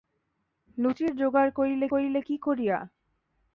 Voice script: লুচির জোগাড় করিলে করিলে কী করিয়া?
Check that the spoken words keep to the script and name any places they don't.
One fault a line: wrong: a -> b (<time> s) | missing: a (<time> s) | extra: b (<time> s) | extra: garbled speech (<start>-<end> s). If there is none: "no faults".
no faults